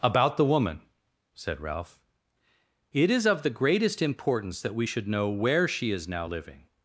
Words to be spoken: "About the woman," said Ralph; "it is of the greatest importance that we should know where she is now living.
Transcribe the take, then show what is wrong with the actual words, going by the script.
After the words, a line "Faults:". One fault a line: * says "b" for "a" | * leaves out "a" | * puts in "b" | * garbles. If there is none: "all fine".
"About the woman," said Ralph; "it is of the greatest importance that we should know where she is now living.
Faults:
all fine